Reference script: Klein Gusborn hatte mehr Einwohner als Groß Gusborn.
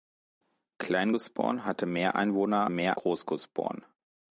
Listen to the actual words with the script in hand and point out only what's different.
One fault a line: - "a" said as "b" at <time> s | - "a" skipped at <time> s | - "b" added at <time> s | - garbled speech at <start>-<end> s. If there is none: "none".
- "als" said as "mehr" at 2.7 s